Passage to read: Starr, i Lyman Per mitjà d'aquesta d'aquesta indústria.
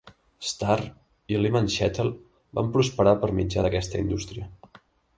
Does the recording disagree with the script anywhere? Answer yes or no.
yes